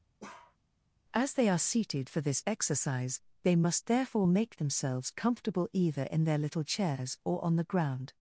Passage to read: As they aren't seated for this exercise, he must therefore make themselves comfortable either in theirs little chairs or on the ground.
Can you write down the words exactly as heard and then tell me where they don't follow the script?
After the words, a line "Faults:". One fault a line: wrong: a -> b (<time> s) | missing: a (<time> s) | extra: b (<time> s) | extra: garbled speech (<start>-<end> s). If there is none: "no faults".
As they are seated for this exercise, they must therefore make themselves comfortable either in their little chairs or on the ground.
Faults:
wrong: aren't -> are (1.5 s)
wrong: he -> they (3.4 s)
wrong: theirs -> their (6.2 s)